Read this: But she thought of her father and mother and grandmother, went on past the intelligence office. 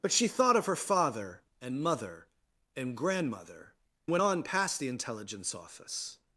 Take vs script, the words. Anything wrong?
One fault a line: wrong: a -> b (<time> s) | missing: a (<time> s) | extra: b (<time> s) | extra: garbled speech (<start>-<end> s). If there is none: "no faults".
no faults